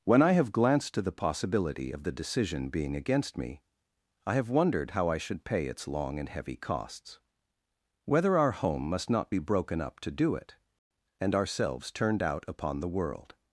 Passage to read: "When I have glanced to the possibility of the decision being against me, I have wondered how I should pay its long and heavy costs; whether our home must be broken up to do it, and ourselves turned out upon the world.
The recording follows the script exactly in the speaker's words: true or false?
false